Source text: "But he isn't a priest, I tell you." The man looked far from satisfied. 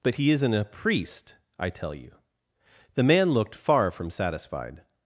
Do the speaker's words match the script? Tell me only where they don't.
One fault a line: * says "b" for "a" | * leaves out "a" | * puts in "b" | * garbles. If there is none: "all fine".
all fine